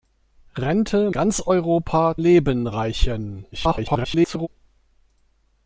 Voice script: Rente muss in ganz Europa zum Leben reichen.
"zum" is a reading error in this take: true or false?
true